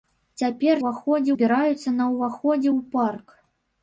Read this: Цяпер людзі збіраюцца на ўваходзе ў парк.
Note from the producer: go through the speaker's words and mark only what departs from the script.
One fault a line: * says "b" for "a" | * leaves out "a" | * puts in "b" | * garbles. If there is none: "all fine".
* says "ўваходзе" for "людзі"